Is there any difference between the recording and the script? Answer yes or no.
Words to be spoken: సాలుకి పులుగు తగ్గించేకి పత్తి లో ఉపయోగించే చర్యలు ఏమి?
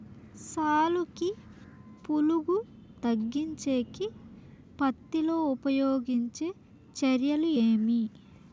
no